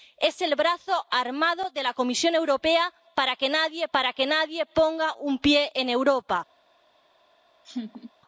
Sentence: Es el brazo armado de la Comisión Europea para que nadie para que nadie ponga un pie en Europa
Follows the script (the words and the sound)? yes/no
no